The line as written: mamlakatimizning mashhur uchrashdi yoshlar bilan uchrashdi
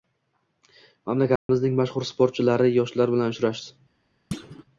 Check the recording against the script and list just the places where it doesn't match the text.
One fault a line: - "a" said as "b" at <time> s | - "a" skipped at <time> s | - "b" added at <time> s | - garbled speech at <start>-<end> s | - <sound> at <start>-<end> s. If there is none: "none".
- dropout at 1.4-1.5 s
- "uchrashdi" said as "sportchilari" at 2.1 s
- thud at 4.3-4.6 s